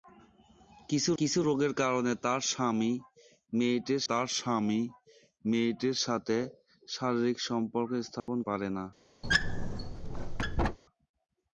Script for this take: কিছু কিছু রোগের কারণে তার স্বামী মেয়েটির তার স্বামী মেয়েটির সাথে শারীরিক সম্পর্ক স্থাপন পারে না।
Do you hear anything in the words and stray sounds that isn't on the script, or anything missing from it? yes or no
yes